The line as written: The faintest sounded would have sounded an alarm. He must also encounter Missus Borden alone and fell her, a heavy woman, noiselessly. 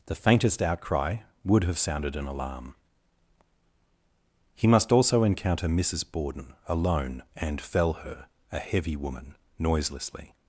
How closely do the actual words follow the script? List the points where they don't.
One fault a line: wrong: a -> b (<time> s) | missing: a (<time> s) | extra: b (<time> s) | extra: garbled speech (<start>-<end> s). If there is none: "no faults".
wrong: sounded -> outcry (0.6 s)